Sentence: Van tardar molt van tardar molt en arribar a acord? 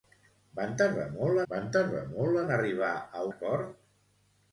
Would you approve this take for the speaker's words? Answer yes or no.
yes